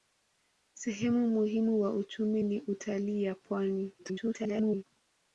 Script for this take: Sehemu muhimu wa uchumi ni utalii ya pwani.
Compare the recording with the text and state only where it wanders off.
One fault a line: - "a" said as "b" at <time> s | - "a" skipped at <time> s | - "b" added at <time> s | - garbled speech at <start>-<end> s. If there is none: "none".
- garbled speech at 4.0-4.8 s